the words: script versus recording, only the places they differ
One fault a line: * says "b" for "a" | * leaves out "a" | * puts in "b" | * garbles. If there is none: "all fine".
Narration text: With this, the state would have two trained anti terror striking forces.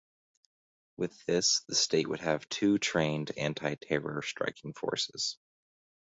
all fine